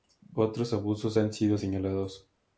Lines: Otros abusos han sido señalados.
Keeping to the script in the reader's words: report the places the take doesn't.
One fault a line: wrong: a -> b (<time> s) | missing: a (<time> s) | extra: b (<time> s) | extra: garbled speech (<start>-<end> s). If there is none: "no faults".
no faults